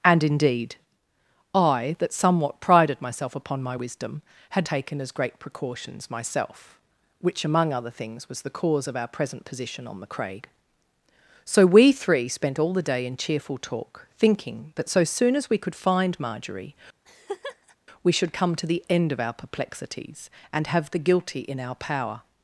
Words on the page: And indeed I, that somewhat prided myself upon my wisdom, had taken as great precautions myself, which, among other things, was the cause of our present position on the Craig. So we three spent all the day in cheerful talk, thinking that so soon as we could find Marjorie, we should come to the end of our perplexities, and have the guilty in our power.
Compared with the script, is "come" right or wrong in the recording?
right